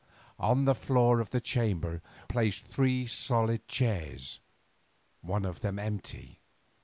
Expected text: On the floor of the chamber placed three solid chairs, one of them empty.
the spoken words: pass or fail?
pass